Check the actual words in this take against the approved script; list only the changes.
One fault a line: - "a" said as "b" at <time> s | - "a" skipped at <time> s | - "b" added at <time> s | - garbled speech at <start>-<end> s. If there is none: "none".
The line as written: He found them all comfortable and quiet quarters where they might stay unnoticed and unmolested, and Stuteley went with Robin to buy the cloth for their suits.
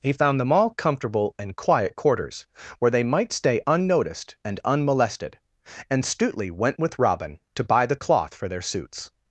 none